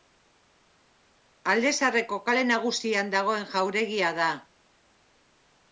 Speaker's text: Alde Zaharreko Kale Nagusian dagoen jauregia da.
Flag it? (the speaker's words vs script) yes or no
no